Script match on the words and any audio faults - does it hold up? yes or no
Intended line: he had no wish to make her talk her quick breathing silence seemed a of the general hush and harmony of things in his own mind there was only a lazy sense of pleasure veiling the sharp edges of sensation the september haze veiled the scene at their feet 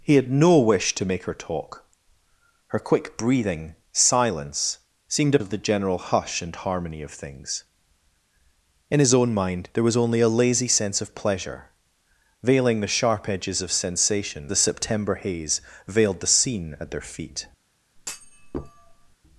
no